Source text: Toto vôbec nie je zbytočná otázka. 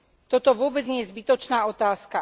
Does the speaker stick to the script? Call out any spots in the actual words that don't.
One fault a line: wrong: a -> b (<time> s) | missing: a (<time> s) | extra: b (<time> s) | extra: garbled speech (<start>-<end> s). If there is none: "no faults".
no faults